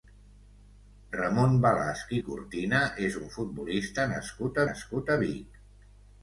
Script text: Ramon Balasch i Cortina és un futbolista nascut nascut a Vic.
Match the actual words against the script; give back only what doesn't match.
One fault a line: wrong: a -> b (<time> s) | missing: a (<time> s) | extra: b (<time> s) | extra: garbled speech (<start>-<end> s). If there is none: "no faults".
no faults